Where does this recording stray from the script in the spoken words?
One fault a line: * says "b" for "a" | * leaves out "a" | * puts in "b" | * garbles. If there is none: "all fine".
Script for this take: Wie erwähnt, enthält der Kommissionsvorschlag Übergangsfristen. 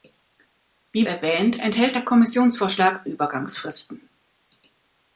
all fine